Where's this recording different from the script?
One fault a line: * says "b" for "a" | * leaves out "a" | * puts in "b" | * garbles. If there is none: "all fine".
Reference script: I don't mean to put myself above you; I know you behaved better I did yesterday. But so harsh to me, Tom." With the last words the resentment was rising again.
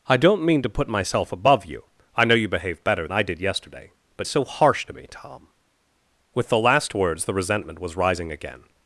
all fine